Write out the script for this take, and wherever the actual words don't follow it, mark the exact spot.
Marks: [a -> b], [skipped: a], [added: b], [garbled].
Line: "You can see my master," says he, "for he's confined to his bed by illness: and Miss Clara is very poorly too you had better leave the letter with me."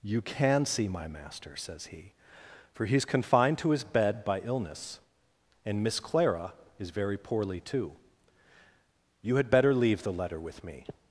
"You can see my master," says he, "for he's confined to his bed by illness: and Miss Clara is very poorly too you had better leave the letter with me."